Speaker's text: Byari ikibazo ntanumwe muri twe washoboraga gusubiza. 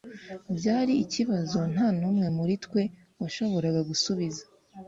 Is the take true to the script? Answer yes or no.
yes